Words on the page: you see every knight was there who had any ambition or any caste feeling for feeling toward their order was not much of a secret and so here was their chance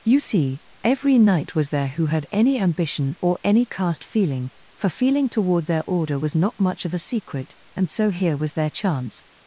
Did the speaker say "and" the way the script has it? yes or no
yes